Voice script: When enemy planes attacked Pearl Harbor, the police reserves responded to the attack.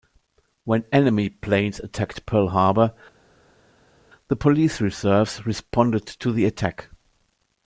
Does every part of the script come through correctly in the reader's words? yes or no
yes